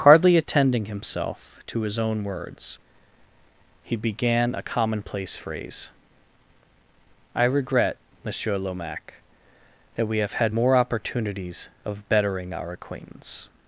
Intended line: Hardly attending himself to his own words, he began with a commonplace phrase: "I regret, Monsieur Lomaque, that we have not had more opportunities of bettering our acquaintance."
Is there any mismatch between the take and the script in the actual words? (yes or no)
yes